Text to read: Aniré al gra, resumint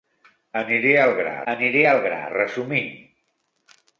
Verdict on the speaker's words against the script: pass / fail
fail